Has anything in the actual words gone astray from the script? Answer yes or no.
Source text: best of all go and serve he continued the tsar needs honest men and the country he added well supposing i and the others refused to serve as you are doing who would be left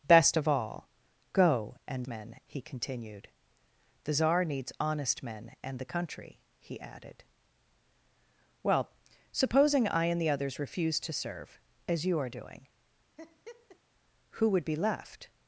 yes